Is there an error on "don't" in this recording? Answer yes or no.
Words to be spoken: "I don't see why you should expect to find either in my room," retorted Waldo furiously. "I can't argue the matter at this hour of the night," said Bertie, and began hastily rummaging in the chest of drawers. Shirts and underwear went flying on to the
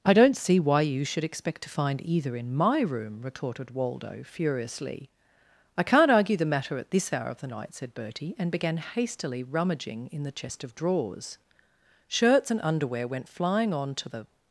no